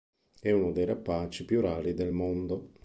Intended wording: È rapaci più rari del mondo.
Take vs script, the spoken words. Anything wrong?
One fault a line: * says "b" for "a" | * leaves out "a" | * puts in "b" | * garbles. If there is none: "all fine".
* puts in "uno dei"